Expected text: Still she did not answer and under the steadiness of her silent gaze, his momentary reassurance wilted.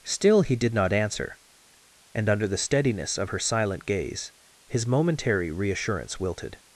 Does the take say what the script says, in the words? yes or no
no